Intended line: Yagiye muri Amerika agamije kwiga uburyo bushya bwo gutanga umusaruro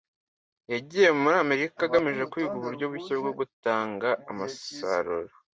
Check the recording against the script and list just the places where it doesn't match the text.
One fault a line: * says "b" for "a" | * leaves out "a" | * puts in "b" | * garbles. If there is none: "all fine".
all fine